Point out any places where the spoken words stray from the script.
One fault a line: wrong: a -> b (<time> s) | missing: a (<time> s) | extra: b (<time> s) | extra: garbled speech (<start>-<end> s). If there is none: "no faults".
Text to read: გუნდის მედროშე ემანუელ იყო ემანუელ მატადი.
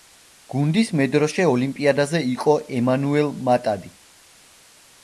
wrong: ემანუელ -> ოლიმპიადაზე (1.5 s)